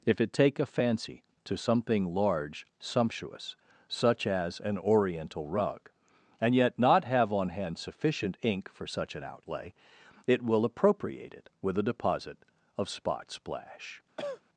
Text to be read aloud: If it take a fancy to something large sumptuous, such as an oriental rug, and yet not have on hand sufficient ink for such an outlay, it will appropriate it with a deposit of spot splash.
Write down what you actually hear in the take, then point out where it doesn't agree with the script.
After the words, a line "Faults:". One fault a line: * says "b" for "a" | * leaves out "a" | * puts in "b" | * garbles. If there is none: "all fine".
If it take a fancy to something large sumptuous, such as an oriental rug, and yet not have on hand sufficient ink for such an outlay, it will appropriate it with a deposit of spot splash.
Faults:
all fine